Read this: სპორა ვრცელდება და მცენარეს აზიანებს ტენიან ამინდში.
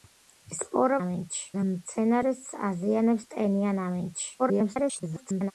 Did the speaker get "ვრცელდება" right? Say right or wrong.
wrong